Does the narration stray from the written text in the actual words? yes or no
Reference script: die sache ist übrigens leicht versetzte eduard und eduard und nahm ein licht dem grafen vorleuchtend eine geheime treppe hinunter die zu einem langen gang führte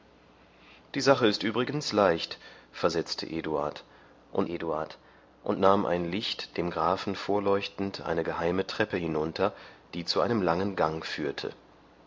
no